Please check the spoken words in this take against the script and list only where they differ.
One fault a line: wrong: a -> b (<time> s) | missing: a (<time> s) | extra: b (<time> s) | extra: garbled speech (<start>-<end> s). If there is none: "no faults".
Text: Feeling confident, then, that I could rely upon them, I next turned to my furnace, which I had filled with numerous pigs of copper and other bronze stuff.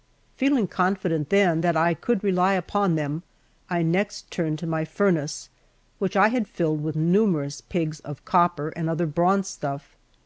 no faults